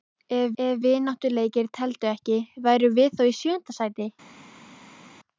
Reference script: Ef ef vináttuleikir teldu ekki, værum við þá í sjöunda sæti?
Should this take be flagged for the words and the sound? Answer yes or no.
no